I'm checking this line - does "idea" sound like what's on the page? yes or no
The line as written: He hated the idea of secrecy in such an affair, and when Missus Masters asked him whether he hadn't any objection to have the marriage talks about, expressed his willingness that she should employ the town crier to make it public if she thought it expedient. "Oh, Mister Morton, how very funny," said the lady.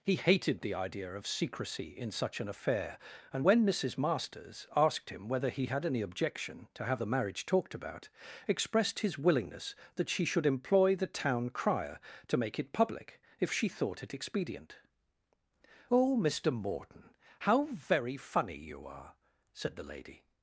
yes